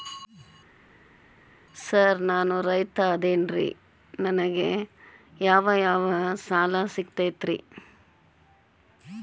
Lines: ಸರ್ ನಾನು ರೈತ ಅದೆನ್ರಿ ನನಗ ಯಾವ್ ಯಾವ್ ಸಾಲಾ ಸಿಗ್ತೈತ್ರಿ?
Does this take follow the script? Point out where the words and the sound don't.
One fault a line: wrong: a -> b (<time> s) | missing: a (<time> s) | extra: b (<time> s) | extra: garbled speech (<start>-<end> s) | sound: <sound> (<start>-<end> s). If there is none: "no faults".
no faults